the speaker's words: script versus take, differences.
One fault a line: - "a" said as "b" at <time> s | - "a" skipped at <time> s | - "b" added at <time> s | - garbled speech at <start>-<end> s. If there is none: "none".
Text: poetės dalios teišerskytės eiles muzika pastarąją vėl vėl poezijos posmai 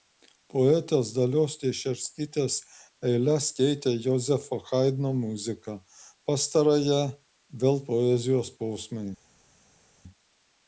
- "keitė jozefo haidno" added at 3.6 s
- "vėl" skipped at 7.8 s